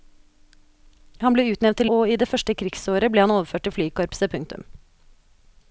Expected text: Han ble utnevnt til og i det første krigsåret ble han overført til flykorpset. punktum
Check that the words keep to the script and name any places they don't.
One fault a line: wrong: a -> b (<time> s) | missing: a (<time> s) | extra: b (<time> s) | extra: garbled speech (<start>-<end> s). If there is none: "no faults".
no faults